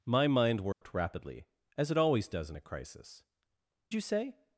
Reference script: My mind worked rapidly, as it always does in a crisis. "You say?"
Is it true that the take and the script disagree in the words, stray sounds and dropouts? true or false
true